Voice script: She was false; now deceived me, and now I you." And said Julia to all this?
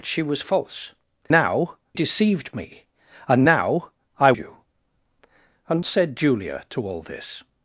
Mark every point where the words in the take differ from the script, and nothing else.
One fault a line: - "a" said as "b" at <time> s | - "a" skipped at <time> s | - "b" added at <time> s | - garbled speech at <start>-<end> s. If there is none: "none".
none